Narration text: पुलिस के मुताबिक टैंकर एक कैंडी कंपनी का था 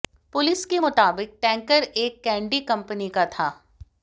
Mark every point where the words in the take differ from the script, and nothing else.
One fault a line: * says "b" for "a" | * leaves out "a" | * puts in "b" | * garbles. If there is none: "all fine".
all fine